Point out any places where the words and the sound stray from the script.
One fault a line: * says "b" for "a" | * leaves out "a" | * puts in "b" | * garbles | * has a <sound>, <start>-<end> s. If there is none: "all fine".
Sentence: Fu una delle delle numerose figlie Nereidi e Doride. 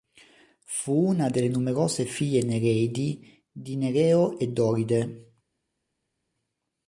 * leaves out "delle"
* puts in "di Nereo"